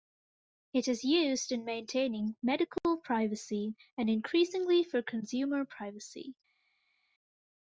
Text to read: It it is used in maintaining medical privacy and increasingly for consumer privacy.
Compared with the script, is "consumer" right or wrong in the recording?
right